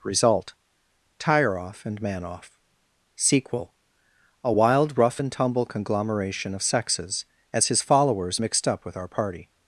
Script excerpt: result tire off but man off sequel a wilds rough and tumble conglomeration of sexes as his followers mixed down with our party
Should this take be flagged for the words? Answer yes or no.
yes